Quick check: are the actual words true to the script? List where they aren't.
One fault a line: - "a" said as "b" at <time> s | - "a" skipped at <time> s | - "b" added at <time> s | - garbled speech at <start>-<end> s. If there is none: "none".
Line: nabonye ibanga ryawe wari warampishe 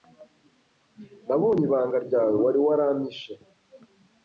none